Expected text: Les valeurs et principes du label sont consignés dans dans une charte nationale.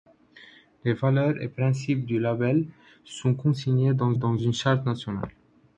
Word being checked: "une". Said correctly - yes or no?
yes